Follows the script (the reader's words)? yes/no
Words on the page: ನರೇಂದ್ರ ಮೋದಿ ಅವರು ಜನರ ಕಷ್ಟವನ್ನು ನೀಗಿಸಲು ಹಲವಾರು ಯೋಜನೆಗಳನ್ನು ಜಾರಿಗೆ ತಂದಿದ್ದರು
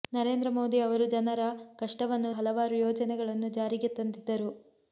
no